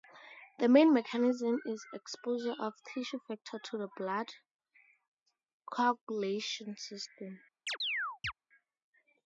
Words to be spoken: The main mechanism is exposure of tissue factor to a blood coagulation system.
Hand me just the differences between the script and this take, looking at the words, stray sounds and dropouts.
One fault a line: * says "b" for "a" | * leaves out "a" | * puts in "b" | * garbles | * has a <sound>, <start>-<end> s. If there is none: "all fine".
* says "the" for "a"
* has a chirp, 7.7-8.3 s